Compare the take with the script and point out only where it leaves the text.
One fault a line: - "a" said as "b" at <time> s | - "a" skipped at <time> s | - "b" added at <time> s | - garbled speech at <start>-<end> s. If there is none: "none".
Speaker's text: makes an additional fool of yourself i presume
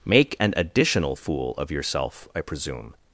- "makes" said as "make" at 0.1 s